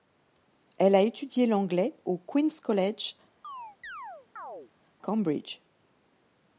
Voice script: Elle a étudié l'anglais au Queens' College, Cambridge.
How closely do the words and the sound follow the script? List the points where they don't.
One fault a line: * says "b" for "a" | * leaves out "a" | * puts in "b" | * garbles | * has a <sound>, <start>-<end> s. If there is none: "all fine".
* has a chirp, 3.4-4.7 s